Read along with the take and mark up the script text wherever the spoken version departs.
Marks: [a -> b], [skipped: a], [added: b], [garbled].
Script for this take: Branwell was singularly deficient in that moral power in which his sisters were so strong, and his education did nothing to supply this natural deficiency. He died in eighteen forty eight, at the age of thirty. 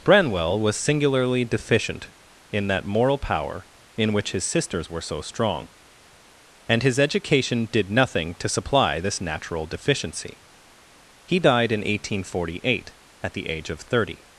Branwell was singularly deficient in that moral power in which his sisters were so strong, and his education did nothing to supply this natural deficiency. He died in eighteen forty eight, at the age of thirty.